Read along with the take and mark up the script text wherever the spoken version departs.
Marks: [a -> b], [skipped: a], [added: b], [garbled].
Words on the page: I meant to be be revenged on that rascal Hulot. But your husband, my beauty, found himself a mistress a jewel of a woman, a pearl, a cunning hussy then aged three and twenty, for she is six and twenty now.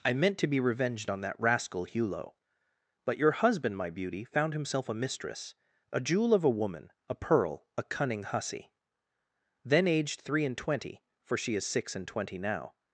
I meant to be [skipped: be] revenged on that rascal Hulot. But your husband, my beauty, found himself a mistress a jewel of a woman, a pearl, a cunning hussy then aged three and twenty, for she is six and twenty now.